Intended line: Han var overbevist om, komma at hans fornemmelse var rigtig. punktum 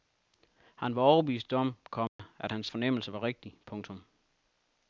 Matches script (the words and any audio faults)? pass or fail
fail